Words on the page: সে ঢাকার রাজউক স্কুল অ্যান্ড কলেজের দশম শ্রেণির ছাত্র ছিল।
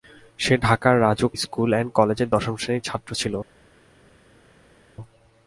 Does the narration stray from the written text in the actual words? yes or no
no